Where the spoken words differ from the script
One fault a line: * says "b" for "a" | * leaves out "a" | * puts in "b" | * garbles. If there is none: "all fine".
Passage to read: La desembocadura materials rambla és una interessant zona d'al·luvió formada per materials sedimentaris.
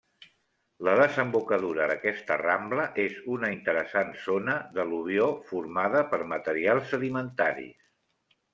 * says "d'aquesta" for "materials"